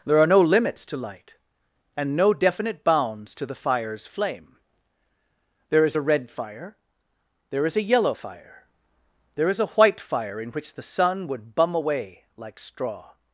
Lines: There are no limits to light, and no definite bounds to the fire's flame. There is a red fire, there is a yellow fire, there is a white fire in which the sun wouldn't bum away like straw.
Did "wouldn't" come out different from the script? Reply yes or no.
yes